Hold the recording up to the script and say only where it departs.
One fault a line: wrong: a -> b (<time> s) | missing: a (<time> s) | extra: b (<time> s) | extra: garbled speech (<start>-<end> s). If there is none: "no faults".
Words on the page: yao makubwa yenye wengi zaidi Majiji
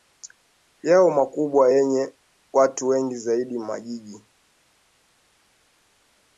extra: watu (2.5 s)